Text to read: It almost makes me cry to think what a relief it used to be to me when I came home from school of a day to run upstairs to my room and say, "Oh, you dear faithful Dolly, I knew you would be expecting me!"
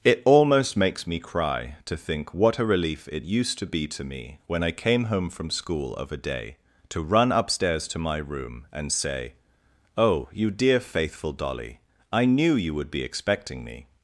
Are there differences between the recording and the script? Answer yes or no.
no